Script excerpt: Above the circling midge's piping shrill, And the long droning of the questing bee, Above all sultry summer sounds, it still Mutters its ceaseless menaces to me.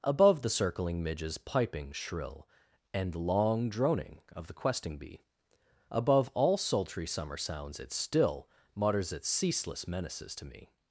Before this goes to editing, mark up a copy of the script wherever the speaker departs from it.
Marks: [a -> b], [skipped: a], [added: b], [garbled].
Above the circling midge's piping shrill, And [skipped: the] long droning of the questing bee, Above all sultry summer sounds, it still Mutters its ceaseless menaces to me.